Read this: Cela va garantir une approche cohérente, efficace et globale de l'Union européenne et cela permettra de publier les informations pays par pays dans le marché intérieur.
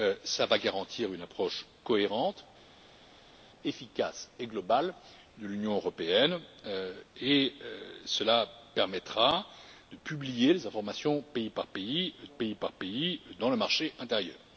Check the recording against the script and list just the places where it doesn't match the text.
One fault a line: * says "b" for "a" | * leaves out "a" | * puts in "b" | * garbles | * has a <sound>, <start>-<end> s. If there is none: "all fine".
* puts in "pays par pays"